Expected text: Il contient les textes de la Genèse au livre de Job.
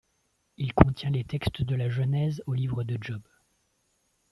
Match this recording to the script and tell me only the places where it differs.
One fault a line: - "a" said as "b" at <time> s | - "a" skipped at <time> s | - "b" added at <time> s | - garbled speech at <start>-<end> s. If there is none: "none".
none